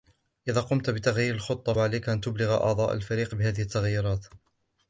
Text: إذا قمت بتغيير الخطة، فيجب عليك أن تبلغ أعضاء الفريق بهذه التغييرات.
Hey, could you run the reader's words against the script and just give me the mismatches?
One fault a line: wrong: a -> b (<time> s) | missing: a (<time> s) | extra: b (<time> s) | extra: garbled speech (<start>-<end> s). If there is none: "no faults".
missing: فيجب (1.7 s)